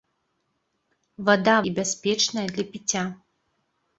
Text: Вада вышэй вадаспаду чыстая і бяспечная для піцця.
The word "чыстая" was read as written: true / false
false